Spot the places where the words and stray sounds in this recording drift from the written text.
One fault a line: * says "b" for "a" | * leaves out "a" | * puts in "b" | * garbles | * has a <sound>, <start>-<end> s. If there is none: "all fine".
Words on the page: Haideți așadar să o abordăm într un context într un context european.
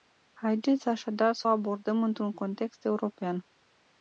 * leaves out "într un context"